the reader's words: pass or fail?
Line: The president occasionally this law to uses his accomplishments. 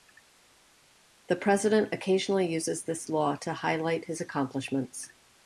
fail